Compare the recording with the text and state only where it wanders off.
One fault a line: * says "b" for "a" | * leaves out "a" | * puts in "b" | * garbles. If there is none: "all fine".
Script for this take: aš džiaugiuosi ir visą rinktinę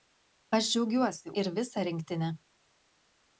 all fine